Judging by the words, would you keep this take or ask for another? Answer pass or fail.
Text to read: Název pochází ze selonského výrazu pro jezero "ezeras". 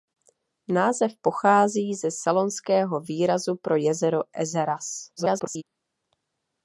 fail